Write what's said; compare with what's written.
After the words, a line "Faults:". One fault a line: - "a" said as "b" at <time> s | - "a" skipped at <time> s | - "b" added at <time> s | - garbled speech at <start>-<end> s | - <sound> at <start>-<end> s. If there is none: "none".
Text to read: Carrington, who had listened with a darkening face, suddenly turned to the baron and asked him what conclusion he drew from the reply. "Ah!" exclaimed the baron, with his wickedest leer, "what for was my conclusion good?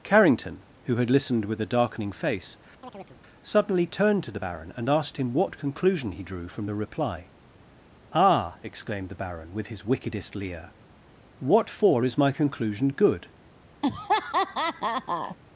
Carrington, who had listened with a darkening face, suddenly turned to the baron and asked him what conclusion he drew from the reply. "Ah!" exclaimed the baron, with his wickedest leer, "what for is my conclusion good?
Faults:
- chirp at 2.8-3.2 s
- "was" said as "is" at 12.0 s
- laugh at 13.8-15.4 s